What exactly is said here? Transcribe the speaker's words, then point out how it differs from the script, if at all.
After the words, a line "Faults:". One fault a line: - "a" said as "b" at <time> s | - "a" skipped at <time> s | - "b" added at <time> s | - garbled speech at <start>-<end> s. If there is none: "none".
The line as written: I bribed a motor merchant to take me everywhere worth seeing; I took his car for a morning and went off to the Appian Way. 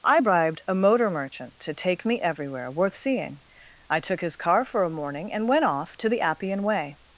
I bribed a motor merchant to take me everywhere worth seeing; I took his car for a morning and went off to the Appian Way.
Faults:
none